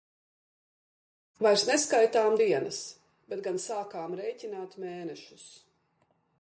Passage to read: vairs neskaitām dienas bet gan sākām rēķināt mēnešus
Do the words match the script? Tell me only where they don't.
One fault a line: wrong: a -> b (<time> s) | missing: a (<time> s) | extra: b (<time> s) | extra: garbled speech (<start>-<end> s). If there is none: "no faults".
no faults